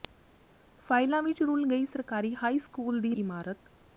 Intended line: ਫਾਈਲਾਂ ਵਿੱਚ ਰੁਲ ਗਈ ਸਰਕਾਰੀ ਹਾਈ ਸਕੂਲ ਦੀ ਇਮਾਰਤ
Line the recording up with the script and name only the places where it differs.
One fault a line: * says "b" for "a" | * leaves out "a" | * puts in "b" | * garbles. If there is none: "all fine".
all fine